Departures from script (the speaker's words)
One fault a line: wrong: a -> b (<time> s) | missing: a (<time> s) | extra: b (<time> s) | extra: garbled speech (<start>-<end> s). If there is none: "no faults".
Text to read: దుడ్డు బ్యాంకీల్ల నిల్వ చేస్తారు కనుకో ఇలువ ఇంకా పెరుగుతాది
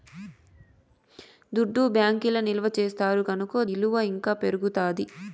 no faults